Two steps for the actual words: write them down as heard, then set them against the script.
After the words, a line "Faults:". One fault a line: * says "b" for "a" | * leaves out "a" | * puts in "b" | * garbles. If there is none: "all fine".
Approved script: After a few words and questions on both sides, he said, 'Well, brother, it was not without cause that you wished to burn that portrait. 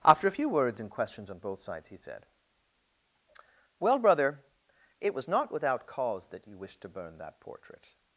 After a few words and questions on both sides, he said, 'Well, brother, it was not without cause that you wished to burn that portrait.
Faults:
all fine